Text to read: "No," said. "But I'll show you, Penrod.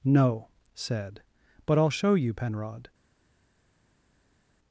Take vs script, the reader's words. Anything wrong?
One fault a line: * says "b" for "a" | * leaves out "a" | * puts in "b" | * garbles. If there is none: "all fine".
all fine